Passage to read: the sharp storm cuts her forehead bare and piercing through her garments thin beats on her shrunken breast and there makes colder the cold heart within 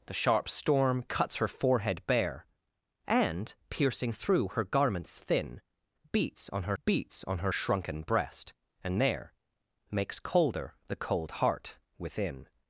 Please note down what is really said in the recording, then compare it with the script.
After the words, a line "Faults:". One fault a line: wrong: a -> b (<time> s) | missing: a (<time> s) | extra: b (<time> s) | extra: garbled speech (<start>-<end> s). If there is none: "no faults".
the sharp storm cuts her forehead bare and piercing through her garments thin beats on her beats on her shrunken breast and there makes colder the cold heart within
Faults:
extra: beats on her (6.8 s)